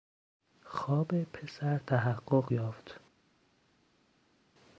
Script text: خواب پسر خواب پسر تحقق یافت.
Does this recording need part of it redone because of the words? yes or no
yes